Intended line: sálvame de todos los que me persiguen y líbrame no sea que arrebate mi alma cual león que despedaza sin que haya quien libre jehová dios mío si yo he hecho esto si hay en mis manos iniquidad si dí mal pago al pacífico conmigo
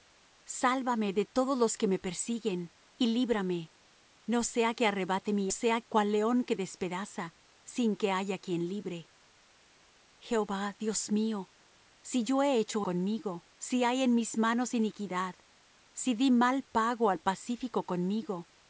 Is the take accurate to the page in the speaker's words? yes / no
no